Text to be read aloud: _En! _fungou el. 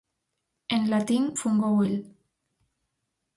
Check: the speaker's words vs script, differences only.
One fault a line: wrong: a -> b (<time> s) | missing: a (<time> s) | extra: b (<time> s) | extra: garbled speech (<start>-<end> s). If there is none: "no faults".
extra: latín (0.9 s)